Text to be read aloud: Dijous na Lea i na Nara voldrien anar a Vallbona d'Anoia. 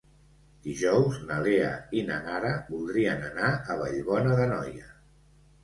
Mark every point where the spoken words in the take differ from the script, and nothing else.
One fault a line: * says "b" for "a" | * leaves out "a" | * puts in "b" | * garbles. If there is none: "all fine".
all fine